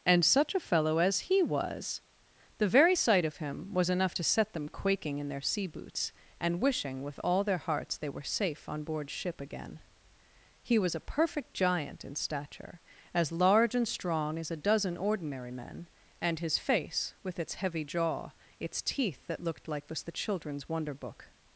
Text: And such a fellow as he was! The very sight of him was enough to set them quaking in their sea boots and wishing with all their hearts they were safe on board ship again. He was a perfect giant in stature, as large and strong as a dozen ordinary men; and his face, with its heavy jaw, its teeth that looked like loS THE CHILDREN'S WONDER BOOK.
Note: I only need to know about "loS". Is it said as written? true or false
false